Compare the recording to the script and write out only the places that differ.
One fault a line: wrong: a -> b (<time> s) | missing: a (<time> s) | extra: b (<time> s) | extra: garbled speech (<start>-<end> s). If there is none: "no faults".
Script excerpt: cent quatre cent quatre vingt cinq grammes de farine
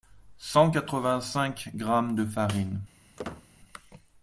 missing: cent quatre (1.0 s)